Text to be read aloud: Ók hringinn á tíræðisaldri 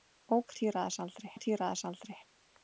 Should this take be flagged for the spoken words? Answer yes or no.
yes